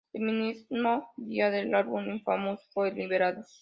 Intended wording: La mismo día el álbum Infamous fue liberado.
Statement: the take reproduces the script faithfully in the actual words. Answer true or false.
false